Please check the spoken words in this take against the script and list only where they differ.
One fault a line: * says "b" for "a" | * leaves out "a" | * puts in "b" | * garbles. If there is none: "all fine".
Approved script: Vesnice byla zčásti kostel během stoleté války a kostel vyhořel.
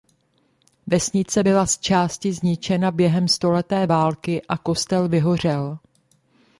* says "zničena" for "kostel"